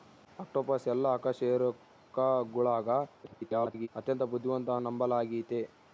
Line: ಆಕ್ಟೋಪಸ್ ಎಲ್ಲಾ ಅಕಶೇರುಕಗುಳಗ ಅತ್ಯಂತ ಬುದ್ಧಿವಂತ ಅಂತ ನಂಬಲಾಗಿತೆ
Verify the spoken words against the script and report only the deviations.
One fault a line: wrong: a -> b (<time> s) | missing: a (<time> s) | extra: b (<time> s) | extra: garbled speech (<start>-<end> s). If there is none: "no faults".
extra: garbled speech (3.2-3.9 s)
missing: ಅಂತ (4.7 s)